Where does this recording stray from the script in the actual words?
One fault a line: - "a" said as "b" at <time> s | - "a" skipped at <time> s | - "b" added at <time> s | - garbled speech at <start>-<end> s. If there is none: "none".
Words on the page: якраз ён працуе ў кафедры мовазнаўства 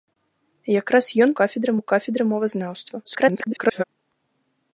- "працуе" said as "кафедры" at 1.4 s
- garbled speech at 3.0-3.8 s